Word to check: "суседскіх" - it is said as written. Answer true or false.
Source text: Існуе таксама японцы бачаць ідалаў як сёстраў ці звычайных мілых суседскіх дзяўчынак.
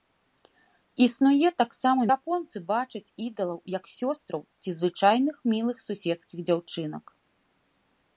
true